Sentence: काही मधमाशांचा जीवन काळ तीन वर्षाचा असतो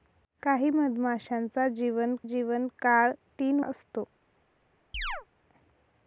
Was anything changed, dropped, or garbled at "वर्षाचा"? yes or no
yes